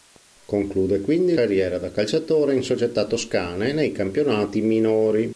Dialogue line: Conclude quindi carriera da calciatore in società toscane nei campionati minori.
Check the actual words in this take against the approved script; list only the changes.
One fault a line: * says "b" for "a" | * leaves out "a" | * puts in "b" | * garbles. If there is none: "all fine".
all fine